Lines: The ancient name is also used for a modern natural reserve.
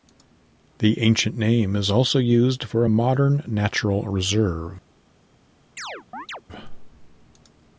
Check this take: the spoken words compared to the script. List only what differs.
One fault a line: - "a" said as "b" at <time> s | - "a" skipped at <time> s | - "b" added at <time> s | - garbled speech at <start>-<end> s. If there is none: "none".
none